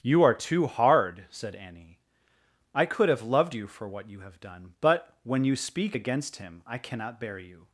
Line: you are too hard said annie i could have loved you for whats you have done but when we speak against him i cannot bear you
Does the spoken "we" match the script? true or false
false